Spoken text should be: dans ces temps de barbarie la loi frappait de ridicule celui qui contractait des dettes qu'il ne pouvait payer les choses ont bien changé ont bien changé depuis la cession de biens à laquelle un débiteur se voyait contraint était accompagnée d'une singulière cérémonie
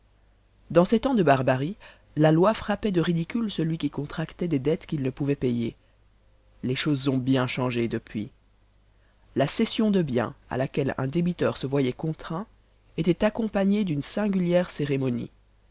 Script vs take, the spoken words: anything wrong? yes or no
yes